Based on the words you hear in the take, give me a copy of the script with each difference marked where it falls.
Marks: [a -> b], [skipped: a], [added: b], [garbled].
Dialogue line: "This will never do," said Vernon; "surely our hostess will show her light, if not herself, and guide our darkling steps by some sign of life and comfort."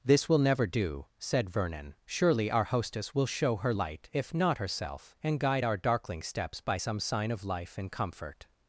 "This will never do," said Vernon; "surely our hostess will show her light, if not herself, and guide our darkling steps by some sign of life and comfort."